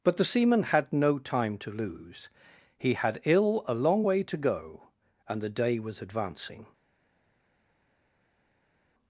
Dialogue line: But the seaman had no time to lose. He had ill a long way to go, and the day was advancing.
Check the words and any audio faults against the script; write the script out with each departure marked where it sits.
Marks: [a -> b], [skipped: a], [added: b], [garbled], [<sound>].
But the seaman had no time to lose. He had ill a long way to go, and the day was advancing.